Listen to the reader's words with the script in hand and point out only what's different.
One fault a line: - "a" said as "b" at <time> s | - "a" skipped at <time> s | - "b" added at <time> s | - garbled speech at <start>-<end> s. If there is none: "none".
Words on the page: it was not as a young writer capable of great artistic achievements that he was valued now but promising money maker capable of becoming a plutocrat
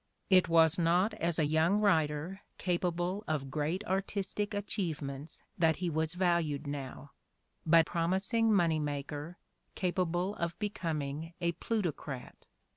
none